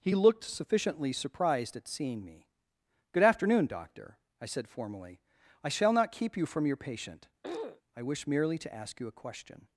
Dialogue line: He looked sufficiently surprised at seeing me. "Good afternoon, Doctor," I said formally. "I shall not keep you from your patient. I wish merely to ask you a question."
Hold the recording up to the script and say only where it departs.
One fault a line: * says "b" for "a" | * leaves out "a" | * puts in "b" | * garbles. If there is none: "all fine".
all fine